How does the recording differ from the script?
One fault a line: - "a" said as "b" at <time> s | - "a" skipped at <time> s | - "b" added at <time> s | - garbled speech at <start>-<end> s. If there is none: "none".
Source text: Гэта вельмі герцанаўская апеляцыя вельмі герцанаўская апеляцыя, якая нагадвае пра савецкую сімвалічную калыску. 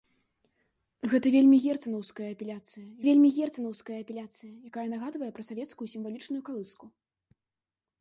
none